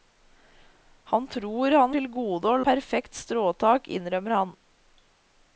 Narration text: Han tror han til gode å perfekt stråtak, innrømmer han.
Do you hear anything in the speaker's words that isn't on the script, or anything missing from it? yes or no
no